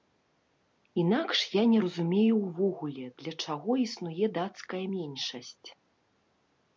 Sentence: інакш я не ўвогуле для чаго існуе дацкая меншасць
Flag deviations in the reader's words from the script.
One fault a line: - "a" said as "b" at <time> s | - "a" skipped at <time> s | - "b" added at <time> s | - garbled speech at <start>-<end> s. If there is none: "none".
- "разумею" added at 1.8 s